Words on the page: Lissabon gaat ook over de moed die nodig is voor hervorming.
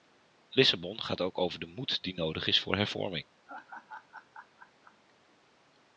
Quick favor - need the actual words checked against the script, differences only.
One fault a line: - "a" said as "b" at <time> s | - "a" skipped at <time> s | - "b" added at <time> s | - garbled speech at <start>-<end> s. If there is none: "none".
none